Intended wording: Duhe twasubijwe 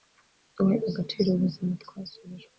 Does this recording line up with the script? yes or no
no